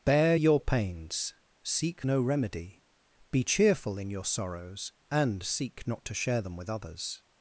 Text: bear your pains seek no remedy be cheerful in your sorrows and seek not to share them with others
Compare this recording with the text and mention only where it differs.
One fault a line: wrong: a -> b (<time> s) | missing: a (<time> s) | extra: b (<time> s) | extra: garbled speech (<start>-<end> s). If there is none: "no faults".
no faults